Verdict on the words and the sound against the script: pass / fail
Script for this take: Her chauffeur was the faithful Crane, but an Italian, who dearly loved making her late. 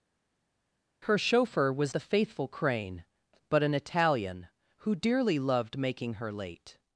pass